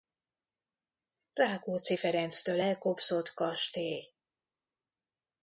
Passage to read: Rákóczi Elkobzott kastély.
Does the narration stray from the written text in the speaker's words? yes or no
yes